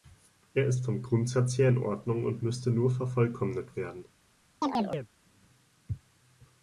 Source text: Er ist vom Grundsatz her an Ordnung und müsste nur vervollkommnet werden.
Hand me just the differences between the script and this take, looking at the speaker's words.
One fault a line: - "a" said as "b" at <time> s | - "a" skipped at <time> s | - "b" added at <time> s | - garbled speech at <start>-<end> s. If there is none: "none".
- "an" said as "in" at 1.7 s